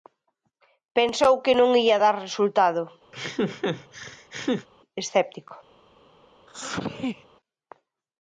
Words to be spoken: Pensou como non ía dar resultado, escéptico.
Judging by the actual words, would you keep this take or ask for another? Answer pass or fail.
fail